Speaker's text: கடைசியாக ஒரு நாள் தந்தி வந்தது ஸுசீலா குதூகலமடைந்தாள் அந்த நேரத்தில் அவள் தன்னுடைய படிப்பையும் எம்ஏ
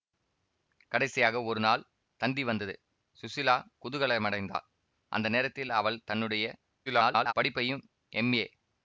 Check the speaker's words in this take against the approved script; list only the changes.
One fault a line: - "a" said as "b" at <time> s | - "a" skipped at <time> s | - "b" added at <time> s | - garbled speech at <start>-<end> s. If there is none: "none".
- garbled speech at 6.9-7.3 s